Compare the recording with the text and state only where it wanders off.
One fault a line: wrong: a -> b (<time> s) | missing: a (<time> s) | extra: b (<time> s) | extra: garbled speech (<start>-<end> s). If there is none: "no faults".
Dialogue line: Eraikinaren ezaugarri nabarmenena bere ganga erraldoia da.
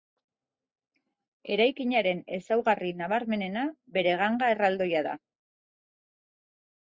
no faults